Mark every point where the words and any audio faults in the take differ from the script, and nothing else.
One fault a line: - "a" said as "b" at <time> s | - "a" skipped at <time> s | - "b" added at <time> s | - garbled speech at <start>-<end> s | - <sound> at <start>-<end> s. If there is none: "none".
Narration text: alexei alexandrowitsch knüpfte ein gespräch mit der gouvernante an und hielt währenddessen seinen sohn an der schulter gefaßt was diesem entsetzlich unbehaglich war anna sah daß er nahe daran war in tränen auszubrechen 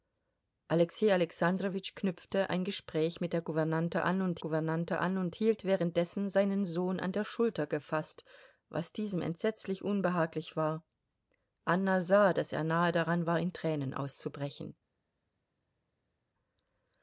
- "gouvernante an und" added at 4.4 s